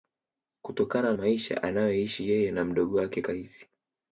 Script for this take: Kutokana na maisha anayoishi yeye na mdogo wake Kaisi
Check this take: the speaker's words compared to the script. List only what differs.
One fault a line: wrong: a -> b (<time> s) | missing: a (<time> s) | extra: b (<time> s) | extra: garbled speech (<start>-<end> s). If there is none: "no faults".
missing: na (1.1 s)